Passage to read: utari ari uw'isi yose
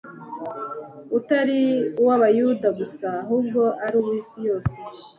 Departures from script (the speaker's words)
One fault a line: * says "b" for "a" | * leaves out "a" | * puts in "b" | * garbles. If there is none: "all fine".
* puts in "uw'Abayuda gusa ahubwo"